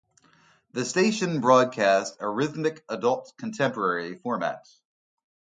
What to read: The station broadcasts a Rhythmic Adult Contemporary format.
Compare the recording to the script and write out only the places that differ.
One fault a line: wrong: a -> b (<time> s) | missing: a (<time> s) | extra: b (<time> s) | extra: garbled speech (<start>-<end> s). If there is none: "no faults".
no faults